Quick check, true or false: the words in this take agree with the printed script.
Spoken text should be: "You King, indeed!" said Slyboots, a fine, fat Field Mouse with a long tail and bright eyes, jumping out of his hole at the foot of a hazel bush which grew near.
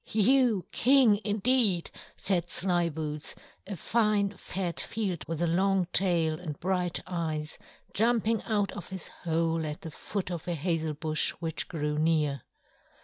false